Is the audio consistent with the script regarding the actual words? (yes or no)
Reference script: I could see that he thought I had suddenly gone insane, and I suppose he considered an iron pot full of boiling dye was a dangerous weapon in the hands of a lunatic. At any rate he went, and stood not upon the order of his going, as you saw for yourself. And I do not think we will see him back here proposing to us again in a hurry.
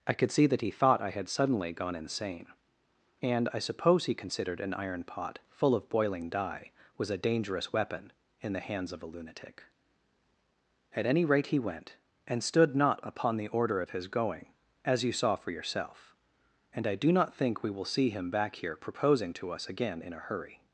yes